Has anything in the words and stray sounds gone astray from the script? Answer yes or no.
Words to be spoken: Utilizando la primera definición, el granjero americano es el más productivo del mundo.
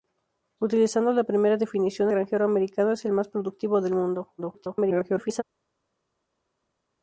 yes